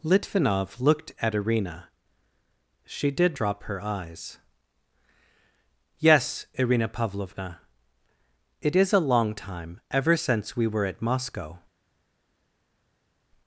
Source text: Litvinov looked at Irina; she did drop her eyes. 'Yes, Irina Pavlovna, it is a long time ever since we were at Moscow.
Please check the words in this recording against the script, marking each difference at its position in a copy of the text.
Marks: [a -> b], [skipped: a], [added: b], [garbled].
Litvinov looked at Irina; she did drop her eyes. 'Yes, Irina Pavlovna, it is a long time ever since we were at Moscow.